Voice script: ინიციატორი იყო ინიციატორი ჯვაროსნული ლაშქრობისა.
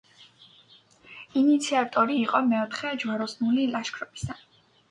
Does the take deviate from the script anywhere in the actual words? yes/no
yes